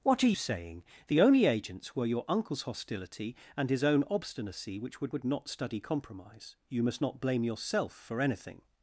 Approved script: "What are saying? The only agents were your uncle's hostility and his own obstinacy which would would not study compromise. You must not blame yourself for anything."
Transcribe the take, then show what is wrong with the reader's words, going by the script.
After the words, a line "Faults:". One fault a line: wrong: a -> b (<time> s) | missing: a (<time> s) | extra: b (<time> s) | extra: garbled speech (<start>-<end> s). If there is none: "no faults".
"What are saying? The only agents were your uncle's hostility and his own obstinacy which would would not study compromise. You must not blame yourself for anything."
Faults:
no faults